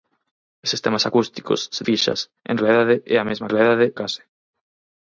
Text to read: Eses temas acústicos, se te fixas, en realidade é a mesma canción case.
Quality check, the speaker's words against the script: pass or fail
fail